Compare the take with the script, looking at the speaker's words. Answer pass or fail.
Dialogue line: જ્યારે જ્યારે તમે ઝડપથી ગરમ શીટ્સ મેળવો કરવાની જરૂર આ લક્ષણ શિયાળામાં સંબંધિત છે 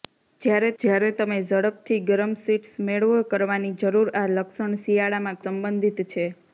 pass